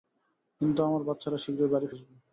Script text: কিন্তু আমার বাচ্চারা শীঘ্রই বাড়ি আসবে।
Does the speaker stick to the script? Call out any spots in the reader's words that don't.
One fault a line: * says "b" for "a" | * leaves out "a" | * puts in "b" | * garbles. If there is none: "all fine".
all fine